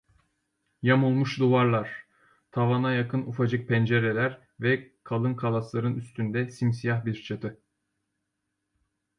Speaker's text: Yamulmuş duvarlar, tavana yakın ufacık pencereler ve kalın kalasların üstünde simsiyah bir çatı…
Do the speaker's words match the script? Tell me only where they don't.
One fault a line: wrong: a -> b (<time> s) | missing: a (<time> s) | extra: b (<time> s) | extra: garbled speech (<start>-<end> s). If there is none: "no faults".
no faults